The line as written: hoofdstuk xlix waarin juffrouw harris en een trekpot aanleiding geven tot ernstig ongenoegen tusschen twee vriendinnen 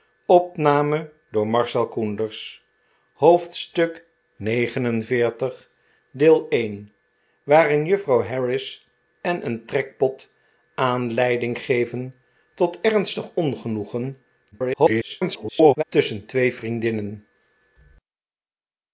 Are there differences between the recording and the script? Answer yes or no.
yes